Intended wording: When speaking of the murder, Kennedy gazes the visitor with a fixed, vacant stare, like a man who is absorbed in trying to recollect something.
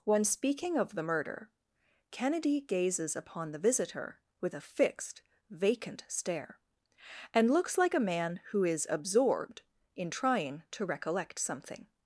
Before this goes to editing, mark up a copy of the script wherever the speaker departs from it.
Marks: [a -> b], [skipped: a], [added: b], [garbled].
When speaking of the murder, Kennedy gazes [added: upon] the visitor with a fixed, vacant stare, [added: and looks] like a man who is absorbed in trying to recollect something.